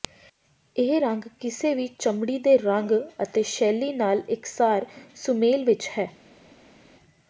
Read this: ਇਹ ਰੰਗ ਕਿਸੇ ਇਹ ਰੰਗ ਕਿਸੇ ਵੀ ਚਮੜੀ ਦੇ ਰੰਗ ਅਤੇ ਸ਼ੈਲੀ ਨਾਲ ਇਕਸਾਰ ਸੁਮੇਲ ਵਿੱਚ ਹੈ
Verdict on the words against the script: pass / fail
fail